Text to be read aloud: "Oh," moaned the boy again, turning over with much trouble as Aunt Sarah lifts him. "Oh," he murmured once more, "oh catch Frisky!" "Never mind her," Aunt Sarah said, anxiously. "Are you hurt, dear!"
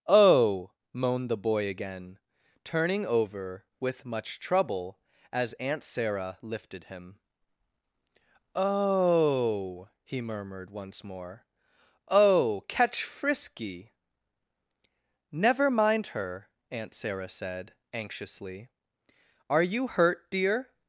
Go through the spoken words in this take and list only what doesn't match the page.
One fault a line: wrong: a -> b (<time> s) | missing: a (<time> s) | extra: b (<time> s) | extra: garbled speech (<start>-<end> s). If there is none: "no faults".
wrong: lifts -> lifted (6.4 s)